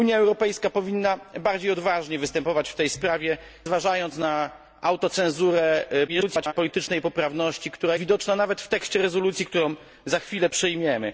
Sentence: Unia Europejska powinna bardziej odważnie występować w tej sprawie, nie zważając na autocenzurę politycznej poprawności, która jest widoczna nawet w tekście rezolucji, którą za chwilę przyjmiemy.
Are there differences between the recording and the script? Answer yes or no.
yes